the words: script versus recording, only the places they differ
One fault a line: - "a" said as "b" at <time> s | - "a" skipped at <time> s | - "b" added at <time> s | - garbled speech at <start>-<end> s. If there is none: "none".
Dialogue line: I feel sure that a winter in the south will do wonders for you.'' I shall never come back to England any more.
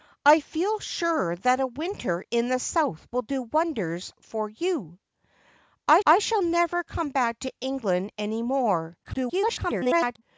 - "I" added at 6.1 s
- garbled speech at 9.0-10.2 s